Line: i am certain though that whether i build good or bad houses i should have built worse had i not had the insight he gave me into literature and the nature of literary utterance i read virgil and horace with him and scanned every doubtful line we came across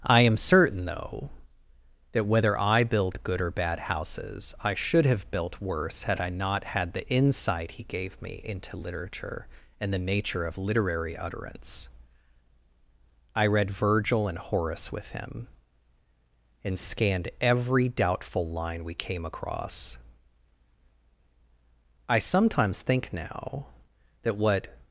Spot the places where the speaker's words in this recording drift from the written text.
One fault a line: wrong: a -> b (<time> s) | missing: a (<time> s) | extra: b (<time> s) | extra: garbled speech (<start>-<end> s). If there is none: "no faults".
extra: i sometimes think now that what (22.1 s)